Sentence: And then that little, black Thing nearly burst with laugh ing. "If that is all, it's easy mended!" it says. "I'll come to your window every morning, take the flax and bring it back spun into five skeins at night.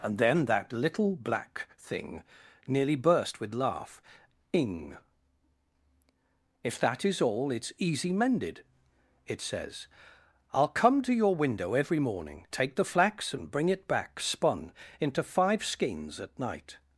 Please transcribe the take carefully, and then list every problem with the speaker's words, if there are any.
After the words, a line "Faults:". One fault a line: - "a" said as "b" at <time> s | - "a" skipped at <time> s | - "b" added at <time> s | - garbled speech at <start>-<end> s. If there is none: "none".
And then that little, black Thing nearly burst with laugh ing. "If that is all, it's easy mended!" it says. "I'll come to your window every morning, take the flax and bring it back spun into five skeins at night.
Faults:
none